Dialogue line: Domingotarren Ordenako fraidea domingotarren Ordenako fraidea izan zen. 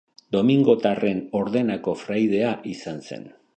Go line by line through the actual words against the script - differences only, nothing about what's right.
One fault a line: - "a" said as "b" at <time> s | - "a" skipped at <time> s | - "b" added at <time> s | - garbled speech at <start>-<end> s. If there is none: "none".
- "domingotarren Ordenako fraidea" skipped at 2.5 s